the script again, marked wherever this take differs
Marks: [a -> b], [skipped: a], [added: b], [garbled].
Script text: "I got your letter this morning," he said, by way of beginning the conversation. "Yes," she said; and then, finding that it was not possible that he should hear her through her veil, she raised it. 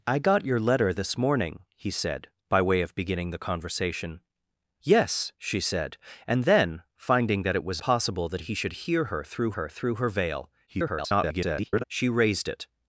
"I got your letter this morning," he said, by way of beginning the conversation. "Yes," she said; and then, finding that it was [skipped: not] possible that he should hear her through her [added: through her] veil, [garbled] she raised it.